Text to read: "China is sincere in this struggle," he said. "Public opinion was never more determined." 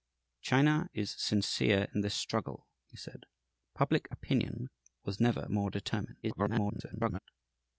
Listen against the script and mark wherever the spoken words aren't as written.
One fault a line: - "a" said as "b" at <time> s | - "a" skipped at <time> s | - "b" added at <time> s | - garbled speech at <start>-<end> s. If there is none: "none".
- garbled speech at 6.2-7.2 s